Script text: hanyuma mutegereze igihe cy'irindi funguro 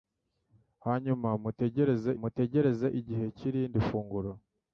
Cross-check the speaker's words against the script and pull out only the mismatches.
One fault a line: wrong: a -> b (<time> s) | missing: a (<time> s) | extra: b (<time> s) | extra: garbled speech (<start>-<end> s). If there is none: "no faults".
extra: mutegereze (2.2 s)